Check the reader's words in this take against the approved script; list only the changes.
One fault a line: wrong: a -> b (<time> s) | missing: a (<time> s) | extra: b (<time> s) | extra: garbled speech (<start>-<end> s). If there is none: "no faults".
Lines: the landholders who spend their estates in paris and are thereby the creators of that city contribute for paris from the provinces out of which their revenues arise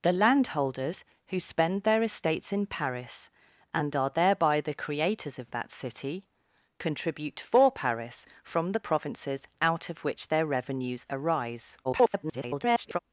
extra: garbled speech (11.8-13.0 s)